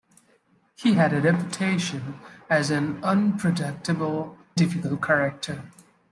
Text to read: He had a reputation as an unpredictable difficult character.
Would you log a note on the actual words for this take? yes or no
no